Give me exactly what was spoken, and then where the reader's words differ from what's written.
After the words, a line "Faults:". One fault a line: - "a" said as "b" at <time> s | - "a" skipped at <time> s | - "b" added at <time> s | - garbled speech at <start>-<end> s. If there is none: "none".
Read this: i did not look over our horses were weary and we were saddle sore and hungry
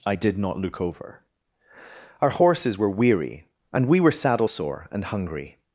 i did not look over our horses were weary and we were saddle sore and hungry
Faults:
none